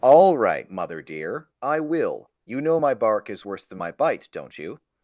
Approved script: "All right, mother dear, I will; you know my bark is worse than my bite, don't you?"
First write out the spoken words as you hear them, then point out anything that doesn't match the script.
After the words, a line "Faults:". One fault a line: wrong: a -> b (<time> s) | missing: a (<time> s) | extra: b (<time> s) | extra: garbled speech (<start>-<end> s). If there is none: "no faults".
"All right, mother dear, I will; you know my bark is worse than my bite, don't you?"
Faults:
no faults